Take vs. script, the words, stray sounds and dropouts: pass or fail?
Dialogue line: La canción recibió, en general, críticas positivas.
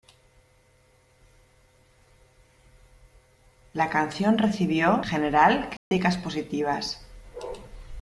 fail